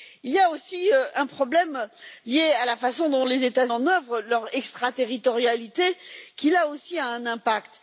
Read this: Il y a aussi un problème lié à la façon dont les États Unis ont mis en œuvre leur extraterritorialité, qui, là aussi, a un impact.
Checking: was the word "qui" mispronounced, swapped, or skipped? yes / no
no